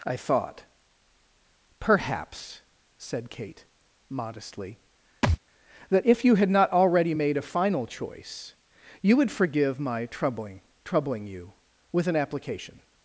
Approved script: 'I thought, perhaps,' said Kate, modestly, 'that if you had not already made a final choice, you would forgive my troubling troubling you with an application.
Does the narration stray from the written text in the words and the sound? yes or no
yes